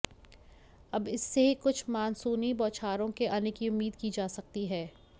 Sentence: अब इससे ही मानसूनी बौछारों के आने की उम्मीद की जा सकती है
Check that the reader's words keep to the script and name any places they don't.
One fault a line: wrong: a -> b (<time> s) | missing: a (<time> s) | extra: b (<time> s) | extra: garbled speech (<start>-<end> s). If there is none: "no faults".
extra: कुछ (1.6 s)